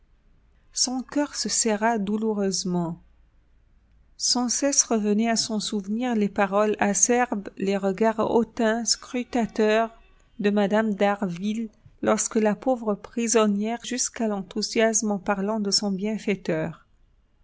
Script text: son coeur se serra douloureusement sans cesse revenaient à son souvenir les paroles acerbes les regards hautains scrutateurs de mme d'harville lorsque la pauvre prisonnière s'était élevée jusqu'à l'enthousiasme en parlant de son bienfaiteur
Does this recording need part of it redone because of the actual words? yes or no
yes